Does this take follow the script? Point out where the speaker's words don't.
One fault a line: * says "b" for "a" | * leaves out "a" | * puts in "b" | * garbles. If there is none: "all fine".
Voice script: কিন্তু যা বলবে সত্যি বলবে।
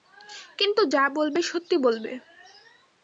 all fine